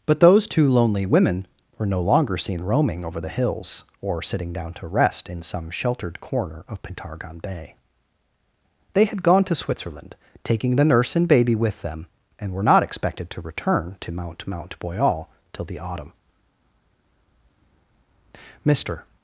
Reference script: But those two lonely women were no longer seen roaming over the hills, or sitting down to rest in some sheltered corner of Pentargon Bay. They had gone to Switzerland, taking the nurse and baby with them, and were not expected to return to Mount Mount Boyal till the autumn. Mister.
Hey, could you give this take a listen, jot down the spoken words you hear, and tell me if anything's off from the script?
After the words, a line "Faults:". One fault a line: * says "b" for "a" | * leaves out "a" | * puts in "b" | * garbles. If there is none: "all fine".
But those two lonely women were no longer seen roaming over the hills, or sitting down to rest in some sheltered corner of Pentargon Bay. They had gone to Switzerland, taking the nurse and baby with them, and were not expected to return to Mount Mount Boyal till the autumn. Mister.
Faults:
all fine